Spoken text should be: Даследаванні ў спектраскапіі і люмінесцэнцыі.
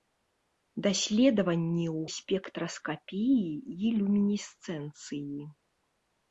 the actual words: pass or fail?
pass